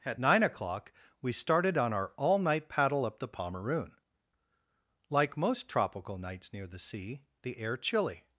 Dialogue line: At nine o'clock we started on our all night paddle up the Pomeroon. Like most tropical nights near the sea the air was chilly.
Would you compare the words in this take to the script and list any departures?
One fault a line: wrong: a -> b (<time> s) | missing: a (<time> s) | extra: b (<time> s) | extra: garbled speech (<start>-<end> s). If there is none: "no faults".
missing: was (7.8 s)